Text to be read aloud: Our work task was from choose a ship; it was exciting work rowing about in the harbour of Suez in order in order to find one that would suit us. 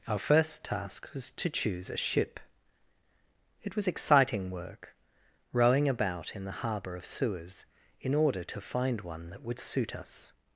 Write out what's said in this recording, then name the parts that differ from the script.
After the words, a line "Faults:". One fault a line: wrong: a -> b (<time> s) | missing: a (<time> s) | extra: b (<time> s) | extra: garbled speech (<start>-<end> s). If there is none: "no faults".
Our first task was to choose a ship; it was exciting work rowing about in the harbour of Suez in order to find one that would suit us.
Faults:
wrong: work -> first (0.2 s)
wrong: from -> to (1.3 s)
missing: in order (8.4 s)